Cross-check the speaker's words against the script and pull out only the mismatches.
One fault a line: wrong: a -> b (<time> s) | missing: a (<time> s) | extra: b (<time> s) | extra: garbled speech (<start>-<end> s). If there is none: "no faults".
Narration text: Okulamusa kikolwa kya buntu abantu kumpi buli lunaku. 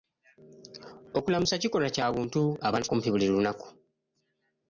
no faults